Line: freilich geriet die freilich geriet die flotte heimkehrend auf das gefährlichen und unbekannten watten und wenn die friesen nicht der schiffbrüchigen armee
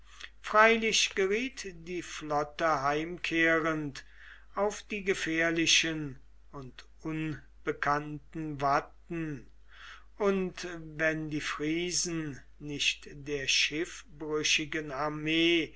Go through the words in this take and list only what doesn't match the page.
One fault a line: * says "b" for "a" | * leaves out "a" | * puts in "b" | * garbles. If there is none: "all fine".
* leaves out "freilich geriet die"
* says "die" for "das"